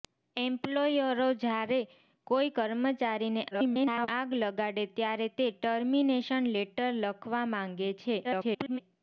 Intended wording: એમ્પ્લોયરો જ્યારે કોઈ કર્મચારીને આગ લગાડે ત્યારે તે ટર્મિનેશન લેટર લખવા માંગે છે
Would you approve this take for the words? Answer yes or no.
no